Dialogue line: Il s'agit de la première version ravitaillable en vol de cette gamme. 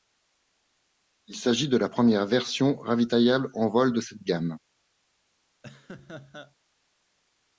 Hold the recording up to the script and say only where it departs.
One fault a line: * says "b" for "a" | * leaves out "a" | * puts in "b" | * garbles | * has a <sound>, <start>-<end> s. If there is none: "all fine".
* has a laugh, 5.6-6.6 s